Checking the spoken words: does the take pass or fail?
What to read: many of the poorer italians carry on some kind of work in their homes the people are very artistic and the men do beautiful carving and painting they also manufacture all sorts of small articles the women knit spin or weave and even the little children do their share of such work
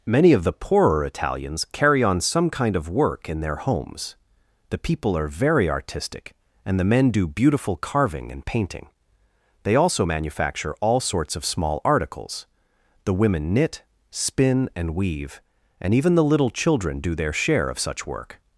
fail